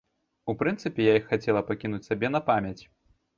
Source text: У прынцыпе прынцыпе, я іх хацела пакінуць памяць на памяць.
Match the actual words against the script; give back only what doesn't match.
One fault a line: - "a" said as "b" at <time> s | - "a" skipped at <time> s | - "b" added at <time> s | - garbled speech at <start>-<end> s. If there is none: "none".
- "прынцыпе" skipped at 1.1 s
- "памяць" said as "сабе" at 2.1 s